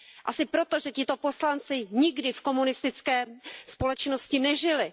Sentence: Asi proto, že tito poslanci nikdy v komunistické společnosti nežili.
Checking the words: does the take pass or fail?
pass